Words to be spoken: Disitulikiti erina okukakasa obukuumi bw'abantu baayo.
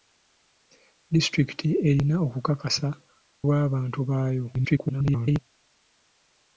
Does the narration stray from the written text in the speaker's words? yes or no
yes